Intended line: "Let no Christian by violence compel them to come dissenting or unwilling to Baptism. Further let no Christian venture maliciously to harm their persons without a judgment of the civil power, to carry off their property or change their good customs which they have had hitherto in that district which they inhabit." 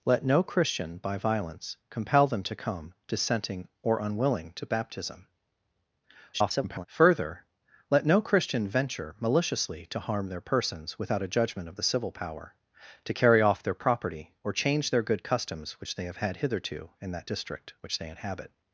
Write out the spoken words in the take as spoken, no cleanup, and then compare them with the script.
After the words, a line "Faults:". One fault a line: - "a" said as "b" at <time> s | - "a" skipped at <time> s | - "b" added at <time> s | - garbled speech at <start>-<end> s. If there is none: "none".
"Let no Christian by violence compel them to come dissenting or unwilling to Baptism. [garbled] Further let no Christian venture maliciously to harm their persons without a judgment of the civil power, to carry off their property or change their good customs which they have had hitherto in that district which they inhabit."
Faults:
- garbled speech at 6.3-6.9 s